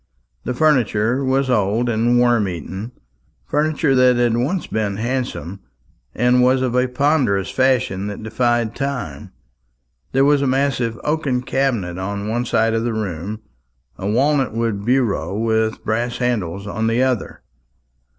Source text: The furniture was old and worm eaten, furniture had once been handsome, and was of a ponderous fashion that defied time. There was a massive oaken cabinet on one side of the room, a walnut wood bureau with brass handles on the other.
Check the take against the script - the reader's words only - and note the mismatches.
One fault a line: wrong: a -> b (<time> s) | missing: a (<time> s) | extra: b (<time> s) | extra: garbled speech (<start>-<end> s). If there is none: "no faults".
extra: that (3.9 s)